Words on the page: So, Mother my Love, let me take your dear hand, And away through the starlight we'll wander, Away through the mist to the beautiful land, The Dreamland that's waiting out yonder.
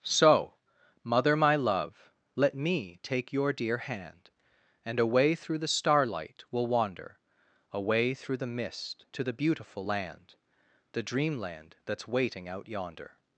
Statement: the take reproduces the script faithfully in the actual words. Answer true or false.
true